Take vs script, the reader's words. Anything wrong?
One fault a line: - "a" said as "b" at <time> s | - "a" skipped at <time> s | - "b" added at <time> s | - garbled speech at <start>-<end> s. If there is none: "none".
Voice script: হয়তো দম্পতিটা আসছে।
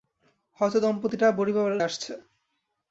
none